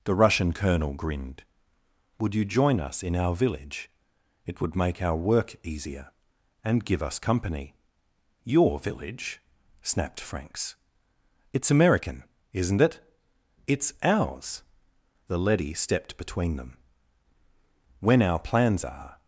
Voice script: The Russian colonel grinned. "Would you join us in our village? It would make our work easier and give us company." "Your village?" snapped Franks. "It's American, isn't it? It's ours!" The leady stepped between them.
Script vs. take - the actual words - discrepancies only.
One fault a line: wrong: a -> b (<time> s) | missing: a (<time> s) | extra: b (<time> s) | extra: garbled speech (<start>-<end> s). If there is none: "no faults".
extra: When our plans are (18.0 s)